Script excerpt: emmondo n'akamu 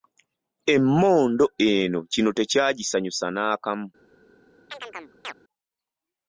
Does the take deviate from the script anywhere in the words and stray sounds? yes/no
yes